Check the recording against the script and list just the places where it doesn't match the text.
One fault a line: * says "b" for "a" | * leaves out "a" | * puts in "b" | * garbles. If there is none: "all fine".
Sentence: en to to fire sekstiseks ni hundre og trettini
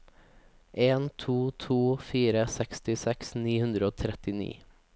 all fine